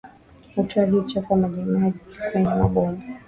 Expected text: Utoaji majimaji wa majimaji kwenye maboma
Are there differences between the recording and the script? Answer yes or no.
yes